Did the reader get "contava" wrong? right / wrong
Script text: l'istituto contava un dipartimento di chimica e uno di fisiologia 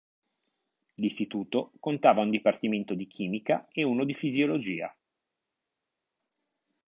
right